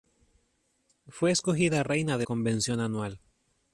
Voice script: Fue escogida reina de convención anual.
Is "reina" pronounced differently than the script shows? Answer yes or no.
no